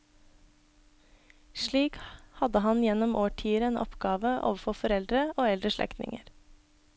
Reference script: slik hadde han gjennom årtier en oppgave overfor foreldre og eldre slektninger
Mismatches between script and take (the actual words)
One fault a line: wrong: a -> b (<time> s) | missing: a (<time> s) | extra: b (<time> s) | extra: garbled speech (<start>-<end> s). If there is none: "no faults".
no faults